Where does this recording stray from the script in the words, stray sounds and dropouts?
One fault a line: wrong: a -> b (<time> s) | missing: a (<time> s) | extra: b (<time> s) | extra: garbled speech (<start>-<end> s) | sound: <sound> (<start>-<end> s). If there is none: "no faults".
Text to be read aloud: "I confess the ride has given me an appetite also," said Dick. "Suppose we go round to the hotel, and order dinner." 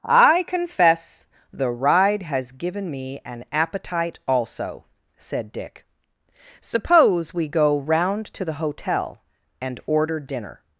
no faults